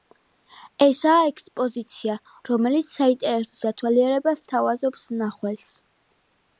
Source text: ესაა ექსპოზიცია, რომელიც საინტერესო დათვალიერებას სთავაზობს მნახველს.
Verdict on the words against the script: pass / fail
pass